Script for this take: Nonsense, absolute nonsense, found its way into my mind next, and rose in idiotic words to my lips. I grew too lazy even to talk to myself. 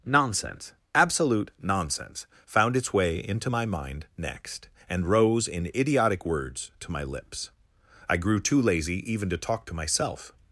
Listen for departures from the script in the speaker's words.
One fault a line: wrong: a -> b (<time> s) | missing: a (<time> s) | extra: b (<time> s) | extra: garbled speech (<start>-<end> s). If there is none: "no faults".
no faults